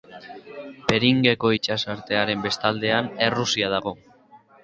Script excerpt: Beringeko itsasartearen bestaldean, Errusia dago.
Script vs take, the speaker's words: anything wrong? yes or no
no